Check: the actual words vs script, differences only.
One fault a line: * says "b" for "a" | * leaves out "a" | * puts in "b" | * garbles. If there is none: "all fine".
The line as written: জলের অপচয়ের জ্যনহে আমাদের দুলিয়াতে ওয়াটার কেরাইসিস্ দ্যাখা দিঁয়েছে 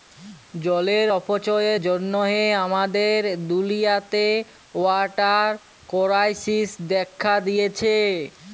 all fine